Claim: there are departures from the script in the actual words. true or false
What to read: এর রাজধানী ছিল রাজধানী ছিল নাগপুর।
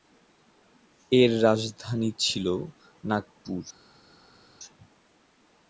true